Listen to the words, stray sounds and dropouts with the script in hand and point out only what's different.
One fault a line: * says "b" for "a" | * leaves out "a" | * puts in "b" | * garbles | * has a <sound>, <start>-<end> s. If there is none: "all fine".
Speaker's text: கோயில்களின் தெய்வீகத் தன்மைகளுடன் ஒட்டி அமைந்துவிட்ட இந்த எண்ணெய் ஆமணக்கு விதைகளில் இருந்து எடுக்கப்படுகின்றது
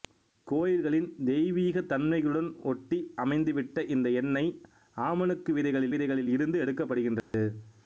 * puts in "விதைகளில்"
* has a dropout, 7.2-7.3 s